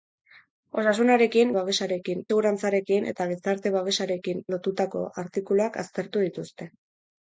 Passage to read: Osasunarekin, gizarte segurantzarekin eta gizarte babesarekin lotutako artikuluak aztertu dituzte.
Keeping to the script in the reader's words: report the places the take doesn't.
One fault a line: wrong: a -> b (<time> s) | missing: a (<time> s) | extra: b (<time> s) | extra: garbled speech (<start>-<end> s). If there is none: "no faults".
wrong: gizarte -> babesarekin (1.6 s)